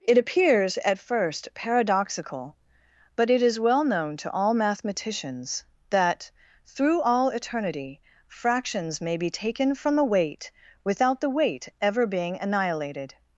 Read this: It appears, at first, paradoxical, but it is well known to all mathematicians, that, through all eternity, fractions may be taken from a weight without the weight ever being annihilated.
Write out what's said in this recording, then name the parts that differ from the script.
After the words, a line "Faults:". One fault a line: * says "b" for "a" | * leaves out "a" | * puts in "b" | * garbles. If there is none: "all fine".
It appears, at first, paradoxical, but it is well known to all mathematicians, that, through all eternity, fractions may be taken from the weight without the weight ever being annihilated.
Faults:
* says "the" for "a"